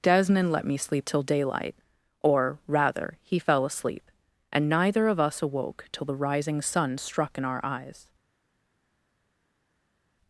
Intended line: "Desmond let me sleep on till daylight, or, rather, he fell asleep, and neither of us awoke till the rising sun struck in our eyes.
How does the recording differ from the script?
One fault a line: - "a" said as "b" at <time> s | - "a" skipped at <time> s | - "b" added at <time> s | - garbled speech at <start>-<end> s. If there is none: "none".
- "on" skipped at 1.1 s